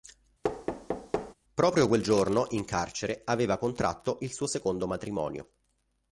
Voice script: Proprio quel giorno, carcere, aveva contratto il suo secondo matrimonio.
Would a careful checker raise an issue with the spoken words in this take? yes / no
yes